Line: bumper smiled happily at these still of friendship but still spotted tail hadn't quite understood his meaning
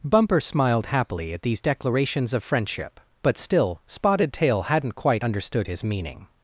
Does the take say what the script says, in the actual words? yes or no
no